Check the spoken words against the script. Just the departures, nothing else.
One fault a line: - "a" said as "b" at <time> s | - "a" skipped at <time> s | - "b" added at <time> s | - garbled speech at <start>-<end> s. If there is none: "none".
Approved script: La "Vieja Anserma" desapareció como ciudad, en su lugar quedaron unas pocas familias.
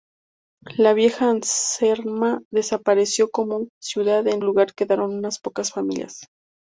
- "su" skipped at 4.4 s